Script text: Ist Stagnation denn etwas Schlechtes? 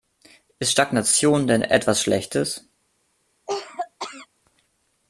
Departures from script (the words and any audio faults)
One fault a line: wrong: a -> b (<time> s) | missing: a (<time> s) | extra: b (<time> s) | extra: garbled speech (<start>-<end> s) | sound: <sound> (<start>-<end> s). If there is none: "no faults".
sound: cough (3.5-4.3 s)